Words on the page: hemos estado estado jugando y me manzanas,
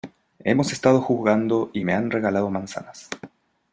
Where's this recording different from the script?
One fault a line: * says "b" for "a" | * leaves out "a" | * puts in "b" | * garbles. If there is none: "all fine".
* leaves out "estado"
* puts in "han regalado"